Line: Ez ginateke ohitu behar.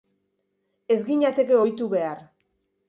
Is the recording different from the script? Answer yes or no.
no